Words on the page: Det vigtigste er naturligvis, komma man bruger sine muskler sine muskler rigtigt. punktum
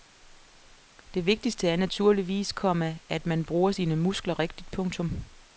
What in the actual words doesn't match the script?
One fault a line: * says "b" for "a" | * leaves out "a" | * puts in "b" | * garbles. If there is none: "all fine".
* puts in "at"
* leaves out "sine muskler"